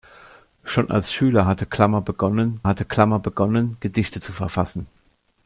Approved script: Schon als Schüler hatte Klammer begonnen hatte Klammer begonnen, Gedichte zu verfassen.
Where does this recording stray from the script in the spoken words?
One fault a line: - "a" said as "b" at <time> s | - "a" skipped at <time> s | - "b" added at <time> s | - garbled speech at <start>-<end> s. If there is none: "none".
none